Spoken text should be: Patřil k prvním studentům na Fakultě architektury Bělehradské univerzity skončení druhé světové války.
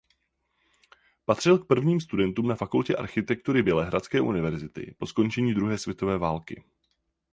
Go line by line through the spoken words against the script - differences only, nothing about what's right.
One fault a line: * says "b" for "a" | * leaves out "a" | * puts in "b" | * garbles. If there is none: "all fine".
* puts in "po"